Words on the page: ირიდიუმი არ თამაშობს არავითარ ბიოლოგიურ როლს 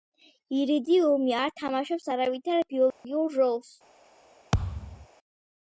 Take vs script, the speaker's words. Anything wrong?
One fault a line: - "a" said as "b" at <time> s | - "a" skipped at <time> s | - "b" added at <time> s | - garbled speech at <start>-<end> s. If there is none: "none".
none